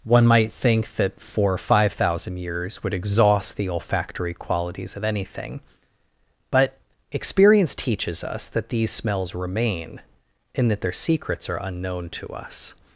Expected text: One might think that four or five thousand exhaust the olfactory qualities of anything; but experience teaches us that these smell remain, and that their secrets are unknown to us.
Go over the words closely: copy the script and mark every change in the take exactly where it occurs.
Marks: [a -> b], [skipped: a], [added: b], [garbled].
One might think that four or five thousand [added: years would] exhaust the olfactory qualities of anything; but experience teaches us that these [smell -> smells] remain, and that their secrets are unknown to us.